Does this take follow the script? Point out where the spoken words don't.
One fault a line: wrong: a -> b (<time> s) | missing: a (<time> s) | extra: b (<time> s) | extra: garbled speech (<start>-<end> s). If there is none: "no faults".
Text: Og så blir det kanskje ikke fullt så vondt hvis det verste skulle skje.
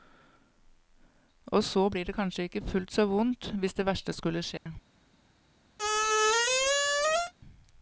no faults